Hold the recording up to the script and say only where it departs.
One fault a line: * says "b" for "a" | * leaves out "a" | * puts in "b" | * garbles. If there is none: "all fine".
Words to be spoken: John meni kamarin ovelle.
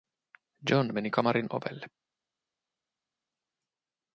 all fine